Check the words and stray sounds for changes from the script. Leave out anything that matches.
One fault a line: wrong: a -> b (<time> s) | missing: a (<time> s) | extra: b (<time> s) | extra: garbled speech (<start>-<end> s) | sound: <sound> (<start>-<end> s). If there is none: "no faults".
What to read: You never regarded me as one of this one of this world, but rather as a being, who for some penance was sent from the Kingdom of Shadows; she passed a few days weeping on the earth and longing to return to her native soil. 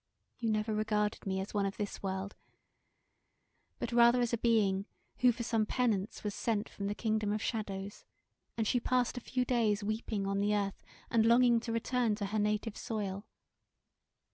missing: one of this (2.0 s)
extra: and (8.6 s)